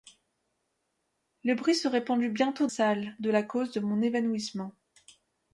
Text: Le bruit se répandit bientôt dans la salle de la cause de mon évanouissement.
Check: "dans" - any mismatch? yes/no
yes